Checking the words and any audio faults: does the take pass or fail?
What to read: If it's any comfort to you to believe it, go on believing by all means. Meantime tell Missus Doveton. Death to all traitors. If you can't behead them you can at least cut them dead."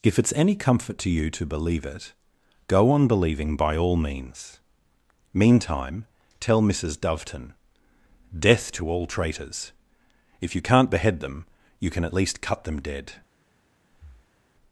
fail